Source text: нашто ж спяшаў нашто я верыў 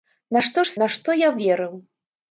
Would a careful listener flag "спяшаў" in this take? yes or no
yes